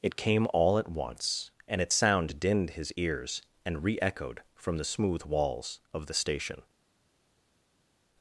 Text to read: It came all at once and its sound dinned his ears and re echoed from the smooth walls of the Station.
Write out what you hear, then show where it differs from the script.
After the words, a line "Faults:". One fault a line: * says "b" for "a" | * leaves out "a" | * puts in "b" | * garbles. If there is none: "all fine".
It came all at once and its sound dinned his ears and re echoed from the smooth walls of the Station.
Faults:
all fine